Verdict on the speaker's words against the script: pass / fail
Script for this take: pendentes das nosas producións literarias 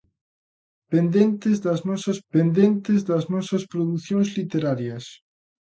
fail